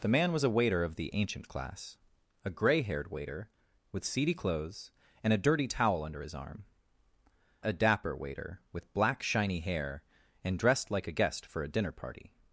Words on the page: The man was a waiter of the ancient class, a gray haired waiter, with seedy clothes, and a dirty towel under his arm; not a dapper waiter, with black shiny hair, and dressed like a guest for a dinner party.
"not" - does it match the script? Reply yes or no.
no